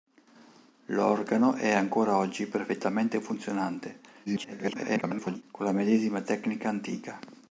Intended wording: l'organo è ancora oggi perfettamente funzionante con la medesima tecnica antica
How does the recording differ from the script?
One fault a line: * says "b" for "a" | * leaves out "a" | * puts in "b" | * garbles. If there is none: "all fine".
* garbles